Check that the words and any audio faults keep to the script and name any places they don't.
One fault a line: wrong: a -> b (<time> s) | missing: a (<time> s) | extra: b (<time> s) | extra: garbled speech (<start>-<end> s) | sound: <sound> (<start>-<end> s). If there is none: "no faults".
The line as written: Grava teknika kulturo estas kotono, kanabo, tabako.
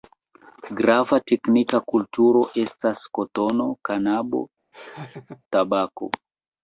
sound: laugh (4.7-5.4 s)